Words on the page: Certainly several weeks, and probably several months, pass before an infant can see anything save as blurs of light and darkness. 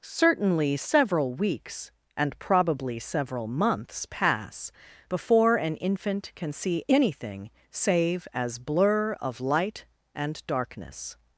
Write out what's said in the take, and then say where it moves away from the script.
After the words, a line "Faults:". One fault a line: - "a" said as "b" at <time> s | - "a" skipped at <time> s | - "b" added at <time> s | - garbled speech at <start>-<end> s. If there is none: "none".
Certainly several weeks, and probably several months, pass before an infant can see anything save as blur of light and darkness.
Faults:
- "blurs" said as "blur" at 8.6 s